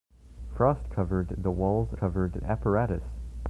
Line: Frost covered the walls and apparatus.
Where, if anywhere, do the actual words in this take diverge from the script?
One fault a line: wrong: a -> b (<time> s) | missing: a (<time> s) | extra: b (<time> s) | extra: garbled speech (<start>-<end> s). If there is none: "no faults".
wrong: and -> covered (1.9 s)